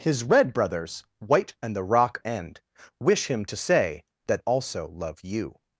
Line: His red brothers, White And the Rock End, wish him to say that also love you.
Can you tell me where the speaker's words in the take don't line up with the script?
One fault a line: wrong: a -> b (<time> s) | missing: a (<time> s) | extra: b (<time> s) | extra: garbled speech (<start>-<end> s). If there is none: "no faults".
no faults